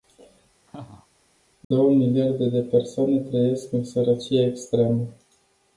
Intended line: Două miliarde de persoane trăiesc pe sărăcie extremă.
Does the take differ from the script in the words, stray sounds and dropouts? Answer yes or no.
yes